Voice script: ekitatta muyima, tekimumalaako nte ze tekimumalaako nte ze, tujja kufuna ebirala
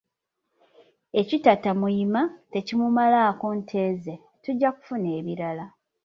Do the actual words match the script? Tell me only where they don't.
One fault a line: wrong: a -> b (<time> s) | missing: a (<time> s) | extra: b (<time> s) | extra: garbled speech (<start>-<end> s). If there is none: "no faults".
missing: tekimumalaako nte ze (4.2 s)